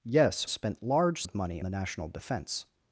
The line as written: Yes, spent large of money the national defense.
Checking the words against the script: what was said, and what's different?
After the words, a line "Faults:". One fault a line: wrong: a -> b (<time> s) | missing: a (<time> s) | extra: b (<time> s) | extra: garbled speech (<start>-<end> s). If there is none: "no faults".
Yes, spent large of money the national defense.
Faults:
no faults